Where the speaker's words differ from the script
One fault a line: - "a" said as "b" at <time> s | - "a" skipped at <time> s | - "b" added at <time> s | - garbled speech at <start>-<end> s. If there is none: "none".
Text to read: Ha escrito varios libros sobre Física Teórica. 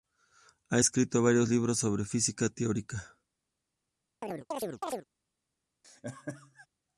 none